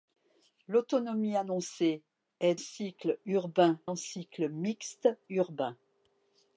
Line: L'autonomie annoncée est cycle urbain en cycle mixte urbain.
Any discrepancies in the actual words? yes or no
no